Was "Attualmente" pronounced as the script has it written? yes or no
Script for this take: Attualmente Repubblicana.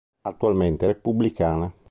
yes